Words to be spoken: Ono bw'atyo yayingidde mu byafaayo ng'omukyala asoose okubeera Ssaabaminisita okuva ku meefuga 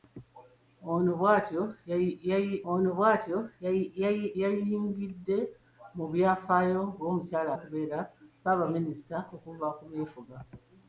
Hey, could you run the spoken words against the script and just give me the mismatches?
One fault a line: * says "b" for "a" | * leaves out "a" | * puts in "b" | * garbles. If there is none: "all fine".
* puts in "ono bw'atyo"
* leaves out "asoose"